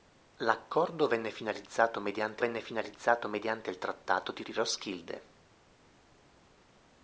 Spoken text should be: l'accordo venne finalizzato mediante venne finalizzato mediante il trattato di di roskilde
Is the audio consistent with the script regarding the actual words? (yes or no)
yes